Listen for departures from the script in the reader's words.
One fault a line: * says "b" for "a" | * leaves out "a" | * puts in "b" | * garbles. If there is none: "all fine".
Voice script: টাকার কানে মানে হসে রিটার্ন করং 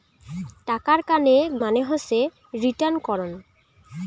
all fine